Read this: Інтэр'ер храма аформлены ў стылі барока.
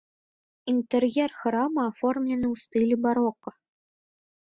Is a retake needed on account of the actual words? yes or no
no